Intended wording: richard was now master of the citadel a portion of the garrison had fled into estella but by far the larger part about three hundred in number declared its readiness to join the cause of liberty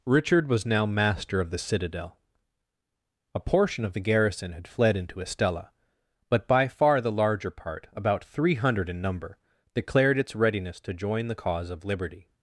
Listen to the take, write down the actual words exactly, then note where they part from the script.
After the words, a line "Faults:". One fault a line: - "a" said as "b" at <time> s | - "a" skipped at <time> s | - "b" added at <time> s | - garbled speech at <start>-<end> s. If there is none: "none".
richard was now master of the citadel a portion of the garrison had fled into estella but by far the larger part about three hundred in number declared its readiness to join the cause of liberty
Faults:
none